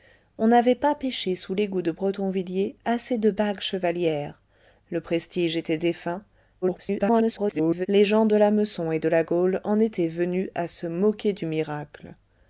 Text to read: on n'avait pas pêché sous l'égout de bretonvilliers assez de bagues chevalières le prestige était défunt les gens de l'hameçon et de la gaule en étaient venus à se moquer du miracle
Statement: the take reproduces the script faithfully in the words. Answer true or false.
false